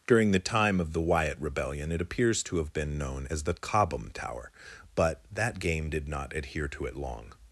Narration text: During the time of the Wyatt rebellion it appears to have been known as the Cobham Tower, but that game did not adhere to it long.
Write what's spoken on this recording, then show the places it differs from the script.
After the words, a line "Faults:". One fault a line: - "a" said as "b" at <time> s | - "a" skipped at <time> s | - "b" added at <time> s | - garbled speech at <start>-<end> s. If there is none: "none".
During the time of the Wyatt rebellion it appears to have been known as the Cobham Tower, but that game did not adhere to it long.
Faults:
none